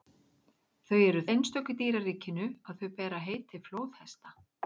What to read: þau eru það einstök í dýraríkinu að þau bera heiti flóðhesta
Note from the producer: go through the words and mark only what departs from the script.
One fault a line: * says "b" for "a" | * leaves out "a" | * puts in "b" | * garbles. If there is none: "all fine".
* leaves out "það"